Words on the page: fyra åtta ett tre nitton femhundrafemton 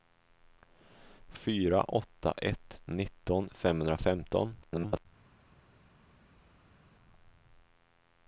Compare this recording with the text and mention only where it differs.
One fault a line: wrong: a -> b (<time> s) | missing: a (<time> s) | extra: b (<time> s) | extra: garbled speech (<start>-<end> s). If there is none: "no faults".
missing: tre (2.8 s)
extra: garbled speech (4.6-5.1 s)